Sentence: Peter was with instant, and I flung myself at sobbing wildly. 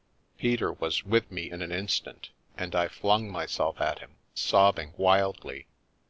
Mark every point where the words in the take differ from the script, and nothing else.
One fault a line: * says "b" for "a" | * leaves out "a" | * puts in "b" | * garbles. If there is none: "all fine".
* puts in "me in an"
* puts in "him"